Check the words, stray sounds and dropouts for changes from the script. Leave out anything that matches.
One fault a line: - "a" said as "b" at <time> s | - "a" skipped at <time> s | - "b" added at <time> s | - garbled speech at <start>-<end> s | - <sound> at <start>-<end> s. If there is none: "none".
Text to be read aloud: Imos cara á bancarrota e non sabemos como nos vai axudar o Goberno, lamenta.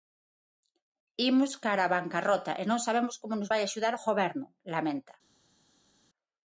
none